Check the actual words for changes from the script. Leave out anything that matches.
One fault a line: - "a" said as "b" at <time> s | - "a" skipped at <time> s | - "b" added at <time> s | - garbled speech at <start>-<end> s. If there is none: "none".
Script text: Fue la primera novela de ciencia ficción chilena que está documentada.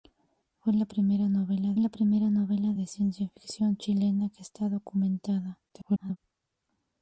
- "la primera novela" added at 1.8 s
- garbled speech at 5.7-6.2 s